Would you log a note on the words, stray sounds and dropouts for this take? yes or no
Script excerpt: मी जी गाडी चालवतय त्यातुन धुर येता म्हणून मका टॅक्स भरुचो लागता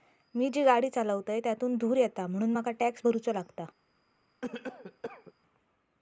yes